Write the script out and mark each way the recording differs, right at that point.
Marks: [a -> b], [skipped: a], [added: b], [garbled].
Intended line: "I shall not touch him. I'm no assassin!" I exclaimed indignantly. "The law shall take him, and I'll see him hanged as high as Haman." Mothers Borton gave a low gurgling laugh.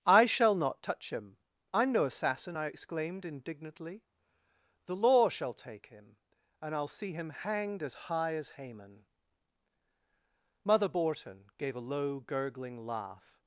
"I shall not touch him. I'm no assassin!" I exclaimed indignantly. "The law shall take him, and I'll see him hanged as high as Haman." [Mothers -> Mother] Borton gave a low gurgling laugh.